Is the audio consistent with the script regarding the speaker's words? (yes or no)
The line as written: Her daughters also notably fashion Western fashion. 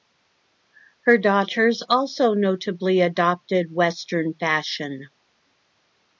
no